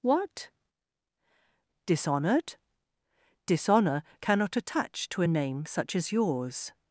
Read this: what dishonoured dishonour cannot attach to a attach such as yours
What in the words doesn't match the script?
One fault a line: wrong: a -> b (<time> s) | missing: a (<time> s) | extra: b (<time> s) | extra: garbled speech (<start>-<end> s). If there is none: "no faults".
wrong: attach -> name (5.3 s)